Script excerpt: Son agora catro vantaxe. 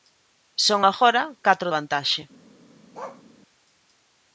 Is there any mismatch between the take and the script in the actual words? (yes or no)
no